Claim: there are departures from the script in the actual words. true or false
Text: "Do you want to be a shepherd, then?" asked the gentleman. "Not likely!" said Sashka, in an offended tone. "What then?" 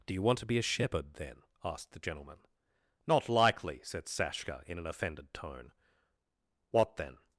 false